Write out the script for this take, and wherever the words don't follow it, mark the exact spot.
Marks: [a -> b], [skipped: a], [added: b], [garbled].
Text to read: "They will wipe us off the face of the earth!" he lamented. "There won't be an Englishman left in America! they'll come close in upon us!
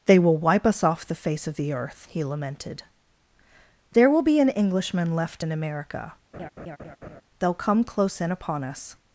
"They will wipe us off the face of the earth!" he lamented. "There [won't -> will] be an Englishman left in America! they'll come close in upon us!